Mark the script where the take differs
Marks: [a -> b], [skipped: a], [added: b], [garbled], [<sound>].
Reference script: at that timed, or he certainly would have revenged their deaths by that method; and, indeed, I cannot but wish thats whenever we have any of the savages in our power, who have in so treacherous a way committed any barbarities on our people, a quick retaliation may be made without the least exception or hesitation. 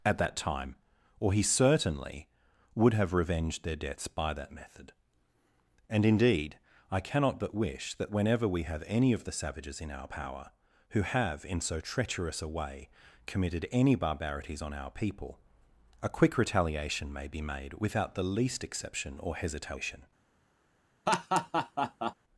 at that [timed, -> time] or he certainly would have revenged their deaths by that method; and, indeed, I cannot but wish [thats -> that] whenever we have any of the savages in our power, who have in so treacherous a way committed any barbarities on our people, a quick retaliation may be made without the least exception or hesitation. [laugh]